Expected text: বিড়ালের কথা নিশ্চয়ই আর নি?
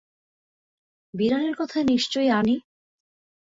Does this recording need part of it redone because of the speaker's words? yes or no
no